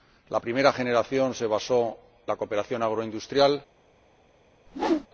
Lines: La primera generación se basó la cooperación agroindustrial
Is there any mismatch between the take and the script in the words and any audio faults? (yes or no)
yes